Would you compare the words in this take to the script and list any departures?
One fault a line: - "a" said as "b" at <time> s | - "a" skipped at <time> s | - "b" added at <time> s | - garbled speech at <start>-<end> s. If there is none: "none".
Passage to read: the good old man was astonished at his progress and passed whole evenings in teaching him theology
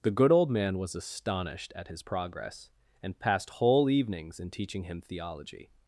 none